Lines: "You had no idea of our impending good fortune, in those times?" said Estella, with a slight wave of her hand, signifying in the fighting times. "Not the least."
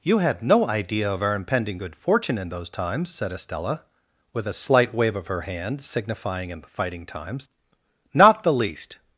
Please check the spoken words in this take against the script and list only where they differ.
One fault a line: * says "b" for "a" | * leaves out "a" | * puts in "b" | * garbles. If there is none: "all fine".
all fine